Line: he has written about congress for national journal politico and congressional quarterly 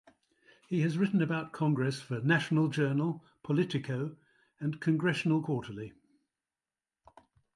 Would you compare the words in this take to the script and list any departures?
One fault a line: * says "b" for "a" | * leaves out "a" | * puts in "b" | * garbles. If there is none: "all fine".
all fine